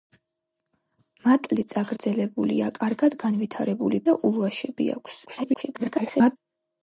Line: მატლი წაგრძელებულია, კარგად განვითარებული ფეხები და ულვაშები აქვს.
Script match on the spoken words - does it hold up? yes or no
no